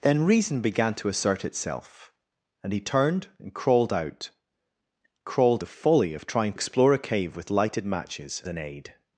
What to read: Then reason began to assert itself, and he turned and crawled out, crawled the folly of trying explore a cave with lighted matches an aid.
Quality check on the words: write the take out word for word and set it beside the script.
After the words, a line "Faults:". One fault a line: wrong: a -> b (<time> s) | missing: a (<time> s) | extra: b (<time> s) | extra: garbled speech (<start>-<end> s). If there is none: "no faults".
Then reason began to assert itself, and he turned and crawled out, crawled the folly of trying explore a cave with lighted matches an aid.
Faults:
no faults